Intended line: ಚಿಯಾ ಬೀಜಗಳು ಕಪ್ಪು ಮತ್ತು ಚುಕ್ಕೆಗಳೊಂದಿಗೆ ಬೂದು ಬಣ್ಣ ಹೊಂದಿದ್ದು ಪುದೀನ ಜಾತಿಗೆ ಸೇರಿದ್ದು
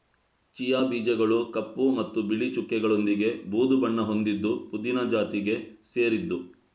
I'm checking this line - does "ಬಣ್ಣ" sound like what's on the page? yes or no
yes